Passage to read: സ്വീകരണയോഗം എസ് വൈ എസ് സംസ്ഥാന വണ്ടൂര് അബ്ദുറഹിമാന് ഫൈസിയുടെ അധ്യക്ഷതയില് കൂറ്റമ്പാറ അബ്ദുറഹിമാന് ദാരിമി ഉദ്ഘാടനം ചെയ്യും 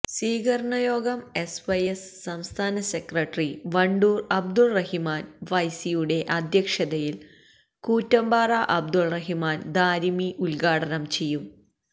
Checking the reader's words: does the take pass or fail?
fail